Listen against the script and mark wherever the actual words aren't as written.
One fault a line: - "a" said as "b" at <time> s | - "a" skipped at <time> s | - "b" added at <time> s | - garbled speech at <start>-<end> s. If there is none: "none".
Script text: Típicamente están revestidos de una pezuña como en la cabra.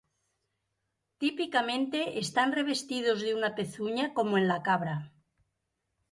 none